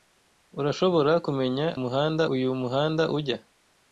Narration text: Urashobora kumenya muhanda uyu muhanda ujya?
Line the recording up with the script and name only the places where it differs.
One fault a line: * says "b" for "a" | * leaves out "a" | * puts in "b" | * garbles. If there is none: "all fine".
all fine